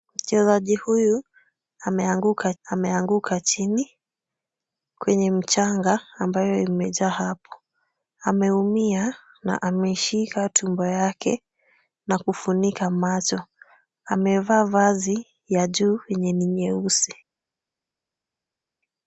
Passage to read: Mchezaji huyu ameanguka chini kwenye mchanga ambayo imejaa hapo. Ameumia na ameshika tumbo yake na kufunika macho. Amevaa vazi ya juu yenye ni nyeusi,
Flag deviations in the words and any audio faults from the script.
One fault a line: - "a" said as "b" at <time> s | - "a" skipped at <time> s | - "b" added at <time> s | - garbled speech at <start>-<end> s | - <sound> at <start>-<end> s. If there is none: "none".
- "ameanguka" added at 2.6 s